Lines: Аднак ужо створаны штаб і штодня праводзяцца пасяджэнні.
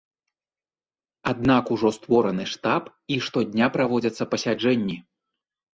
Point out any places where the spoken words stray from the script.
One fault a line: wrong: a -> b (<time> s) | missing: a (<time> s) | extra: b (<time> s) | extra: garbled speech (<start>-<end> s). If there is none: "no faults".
no faults